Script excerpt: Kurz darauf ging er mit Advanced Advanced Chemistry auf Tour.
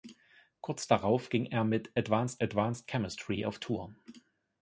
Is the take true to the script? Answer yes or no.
yes